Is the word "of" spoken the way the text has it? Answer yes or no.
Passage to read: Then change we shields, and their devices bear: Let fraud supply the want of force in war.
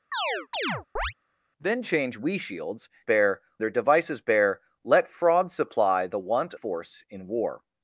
no